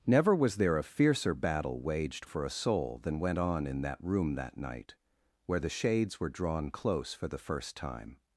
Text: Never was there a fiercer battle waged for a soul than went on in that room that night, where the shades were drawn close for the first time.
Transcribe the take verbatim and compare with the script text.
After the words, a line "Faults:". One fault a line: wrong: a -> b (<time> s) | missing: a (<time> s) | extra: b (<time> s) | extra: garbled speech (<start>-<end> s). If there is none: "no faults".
Never was there a fiercer battle waged for a soul than went on in that room that night, where the shades were drawn close for the first time.
Faults:
no faults